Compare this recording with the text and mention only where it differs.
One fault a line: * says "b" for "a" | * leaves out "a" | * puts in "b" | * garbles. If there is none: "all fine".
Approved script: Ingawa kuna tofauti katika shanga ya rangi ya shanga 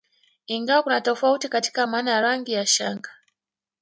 * says "maana" for "shanga"